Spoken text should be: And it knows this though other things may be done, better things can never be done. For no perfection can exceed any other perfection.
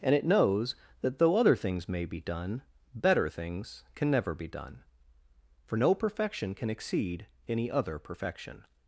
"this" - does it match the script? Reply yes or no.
no